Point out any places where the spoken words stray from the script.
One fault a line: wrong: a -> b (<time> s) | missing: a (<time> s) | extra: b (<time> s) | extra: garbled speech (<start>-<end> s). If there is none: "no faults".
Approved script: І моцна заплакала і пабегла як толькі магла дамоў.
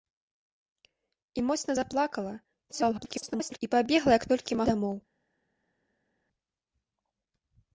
extra: garbled speech (2.7-3.6 s)
missing: магла (4.6 s)